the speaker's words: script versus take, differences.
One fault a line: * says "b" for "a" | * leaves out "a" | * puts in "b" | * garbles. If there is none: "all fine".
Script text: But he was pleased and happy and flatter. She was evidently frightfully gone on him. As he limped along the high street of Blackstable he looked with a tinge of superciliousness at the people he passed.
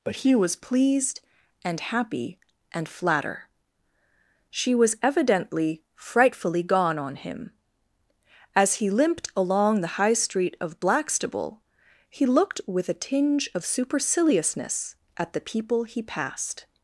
all fine